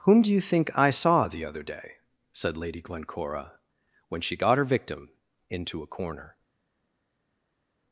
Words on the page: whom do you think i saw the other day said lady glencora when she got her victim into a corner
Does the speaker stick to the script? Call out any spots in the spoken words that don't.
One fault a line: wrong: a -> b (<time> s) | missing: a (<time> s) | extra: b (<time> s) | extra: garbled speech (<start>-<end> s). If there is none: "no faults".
no faults